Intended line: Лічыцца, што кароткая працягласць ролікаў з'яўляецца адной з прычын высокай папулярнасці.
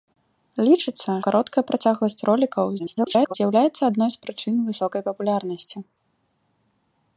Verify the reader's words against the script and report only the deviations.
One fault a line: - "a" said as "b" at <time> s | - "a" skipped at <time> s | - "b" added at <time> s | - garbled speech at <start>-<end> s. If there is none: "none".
- "што" skipped at 1.1 s
- garbled speech at 2.8-3.3 s